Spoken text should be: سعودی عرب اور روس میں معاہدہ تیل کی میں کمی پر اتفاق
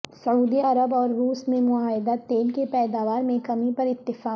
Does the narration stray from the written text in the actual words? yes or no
yes